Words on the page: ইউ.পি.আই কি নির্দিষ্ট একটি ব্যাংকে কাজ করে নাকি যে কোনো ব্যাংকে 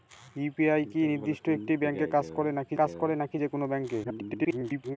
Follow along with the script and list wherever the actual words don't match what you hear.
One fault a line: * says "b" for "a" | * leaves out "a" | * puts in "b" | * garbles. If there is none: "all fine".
* puts in "কাজ করে নাকি"
* garbles